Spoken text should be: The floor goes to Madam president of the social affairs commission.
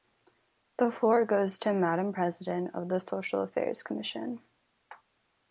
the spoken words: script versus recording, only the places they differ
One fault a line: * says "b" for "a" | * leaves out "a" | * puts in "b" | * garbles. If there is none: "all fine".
all fine